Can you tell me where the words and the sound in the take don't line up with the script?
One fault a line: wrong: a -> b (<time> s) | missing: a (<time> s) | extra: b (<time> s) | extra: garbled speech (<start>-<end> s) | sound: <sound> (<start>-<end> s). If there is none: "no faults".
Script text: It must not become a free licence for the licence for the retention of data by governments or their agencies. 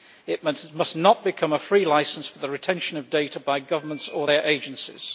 missing: licence for the (2.5 s)